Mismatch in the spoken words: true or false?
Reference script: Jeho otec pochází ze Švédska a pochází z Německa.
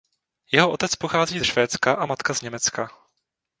true